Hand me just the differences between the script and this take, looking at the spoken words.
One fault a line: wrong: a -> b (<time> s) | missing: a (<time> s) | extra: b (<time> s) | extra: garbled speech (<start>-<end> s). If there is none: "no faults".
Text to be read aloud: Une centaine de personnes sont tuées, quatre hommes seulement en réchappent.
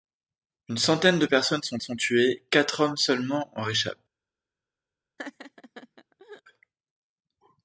extra: sont (1.8 s)